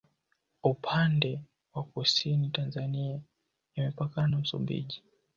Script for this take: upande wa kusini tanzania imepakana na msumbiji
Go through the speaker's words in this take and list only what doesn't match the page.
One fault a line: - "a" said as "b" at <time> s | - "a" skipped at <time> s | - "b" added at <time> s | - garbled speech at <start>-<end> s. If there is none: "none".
none